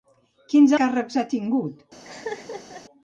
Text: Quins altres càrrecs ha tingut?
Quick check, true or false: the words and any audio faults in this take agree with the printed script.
false